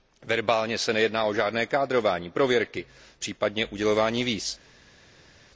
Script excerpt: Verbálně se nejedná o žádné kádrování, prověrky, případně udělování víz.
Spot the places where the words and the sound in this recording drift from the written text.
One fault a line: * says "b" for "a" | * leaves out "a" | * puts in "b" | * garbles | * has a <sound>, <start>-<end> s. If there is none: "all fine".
all fine